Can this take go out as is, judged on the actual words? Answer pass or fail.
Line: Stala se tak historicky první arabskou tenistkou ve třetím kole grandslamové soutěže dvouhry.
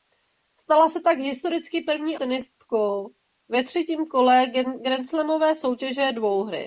fail